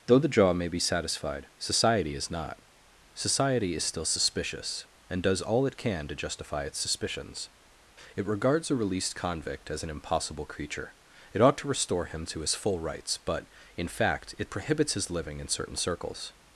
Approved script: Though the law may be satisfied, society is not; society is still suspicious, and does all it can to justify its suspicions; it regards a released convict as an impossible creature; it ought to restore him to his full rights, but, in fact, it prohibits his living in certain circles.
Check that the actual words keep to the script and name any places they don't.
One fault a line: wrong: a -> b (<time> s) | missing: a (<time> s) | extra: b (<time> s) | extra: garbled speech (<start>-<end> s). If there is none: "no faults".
wrong: law -> jaw (0.3 s)